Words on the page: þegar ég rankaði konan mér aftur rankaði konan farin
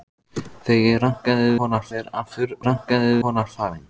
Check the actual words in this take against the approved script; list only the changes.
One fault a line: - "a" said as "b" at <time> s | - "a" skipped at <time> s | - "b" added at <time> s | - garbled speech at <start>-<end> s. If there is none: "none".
none